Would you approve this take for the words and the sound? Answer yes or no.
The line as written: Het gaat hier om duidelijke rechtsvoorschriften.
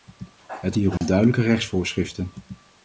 no